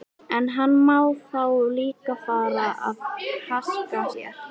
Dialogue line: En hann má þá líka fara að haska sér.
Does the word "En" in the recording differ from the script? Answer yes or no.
no